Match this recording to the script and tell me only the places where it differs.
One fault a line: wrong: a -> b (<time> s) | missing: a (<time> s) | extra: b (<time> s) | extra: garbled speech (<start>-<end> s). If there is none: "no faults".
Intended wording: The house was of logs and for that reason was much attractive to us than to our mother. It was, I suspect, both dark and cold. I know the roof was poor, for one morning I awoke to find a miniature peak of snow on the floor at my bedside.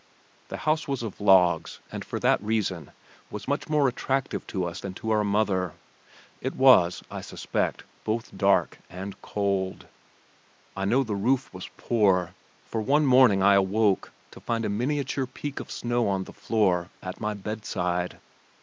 extra: more (3.7 s)